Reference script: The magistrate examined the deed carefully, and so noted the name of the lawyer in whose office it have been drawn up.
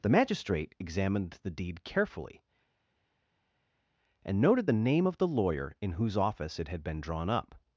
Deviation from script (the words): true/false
true